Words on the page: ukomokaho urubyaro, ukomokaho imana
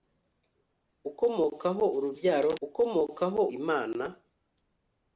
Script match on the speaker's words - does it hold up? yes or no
yes